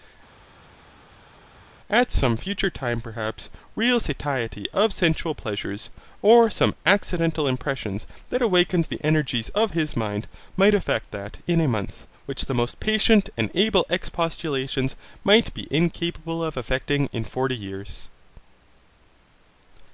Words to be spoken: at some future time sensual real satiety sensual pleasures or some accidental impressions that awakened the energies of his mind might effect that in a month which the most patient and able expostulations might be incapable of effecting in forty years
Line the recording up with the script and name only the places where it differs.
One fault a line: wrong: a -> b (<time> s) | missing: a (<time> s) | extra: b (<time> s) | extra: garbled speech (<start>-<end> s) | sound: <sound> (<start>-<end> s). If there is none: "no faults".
wrong: sensual -> perhaps (3.0 s)
extra: of (4.7 s)